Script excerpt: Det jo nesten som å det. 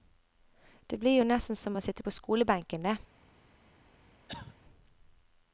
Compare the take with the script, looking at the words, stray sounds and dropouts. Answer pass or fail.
fail